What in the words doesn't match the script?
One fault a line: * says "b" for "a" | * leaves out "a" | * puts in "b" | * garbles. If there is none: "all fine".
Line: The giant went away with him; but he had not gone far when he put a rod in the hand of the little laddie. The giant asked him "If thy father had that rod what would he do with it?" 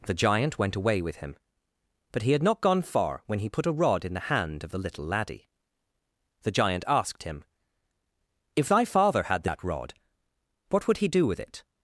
all fine